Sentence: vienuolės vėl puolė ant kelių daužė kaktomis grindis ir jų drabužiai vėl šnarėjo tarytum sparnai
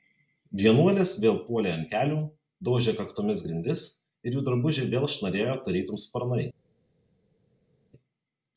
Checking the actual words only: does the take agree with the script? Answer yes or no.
yes